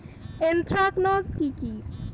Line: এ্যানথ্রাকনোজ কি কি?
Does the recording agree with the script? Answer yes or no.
yes